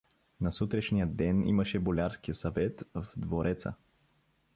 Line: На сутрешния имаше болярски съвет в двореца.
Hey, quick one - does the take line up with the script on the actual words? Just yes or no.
no